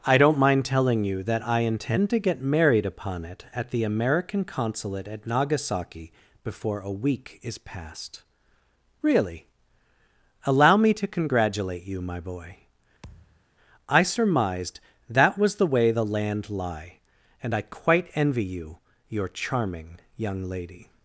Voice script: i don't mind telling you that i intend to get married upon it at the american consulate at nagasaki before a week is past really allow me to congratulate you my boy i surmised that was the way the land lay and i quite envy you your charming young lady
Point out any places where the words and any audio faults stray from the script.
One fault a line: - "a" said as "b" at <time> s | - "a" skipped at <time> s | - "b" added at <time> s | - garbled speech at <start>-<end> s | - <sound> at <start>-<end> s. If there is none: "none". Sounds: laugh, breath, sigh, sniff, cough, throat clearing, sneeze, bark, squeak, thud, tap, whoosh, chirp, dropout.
- thud at 13.0-13.4 s
- "lay" said as "lie" at 16.5 s